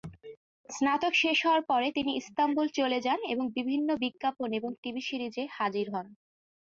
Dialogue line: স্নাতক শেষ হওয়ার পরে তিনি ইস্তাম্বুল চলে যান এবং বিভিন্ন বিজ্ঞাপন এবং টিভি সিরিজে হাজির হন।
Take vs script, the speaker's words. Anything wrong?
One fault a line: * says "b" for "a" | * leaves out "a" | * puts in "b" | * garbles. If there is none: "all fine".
all fine